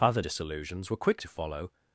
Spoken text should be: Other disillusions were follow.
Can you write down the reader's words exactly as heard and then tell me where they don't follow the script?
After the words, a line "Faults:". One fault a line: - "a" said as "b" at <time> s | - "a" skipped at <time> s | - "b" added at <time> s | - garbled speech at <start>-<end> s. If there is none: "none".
Other disillusions were quick to follow.
Faults:
- "quick to" added at 1.0 s